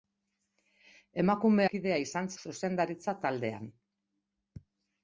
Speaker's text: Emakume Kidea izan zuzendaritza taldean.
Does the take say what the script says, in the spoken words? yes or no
yes